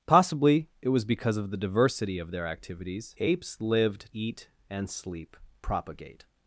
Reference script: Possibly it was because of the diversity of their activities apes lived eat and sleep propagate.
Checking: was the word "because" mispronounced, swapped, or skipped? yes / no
no